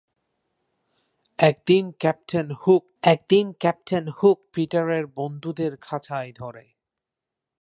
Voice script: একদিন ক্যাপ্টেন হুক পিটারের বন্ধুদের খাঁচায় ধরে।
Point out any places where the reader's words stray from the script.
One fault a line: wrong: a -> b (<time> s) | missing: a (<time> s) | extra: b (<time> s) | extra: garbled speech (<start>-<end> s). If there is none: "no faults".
extra: একদিন ক্যাপ্টেন হুক (3.0 s)